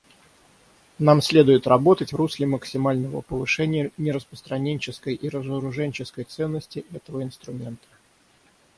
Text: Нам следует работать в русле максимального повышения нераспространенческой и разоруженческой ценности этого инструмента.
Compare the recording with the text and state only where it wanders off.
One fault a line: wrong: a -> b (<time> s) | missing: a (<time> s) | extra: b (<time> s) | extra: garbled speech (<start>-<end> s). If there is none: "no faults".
no faults